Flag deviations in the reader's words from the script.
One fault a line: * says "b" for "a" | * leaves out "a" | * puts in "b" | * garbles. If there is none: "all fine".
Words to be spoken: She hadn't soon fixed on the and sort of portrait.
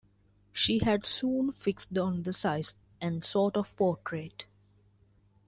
* says "had" for "hadn't"
* puts in "size"